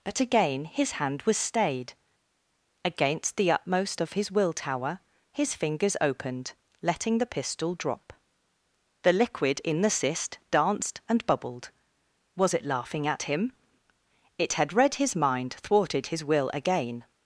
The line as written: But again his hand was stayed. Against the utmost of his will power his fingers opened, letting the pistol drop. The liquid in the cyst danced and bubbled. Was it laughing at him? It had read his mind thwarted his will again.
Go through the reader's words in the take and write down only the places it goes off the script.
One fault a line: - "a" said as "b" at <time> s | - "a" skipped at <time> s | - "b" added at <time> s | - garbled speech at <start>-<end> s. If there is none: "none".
- "power" said as "tower" at 4.5 s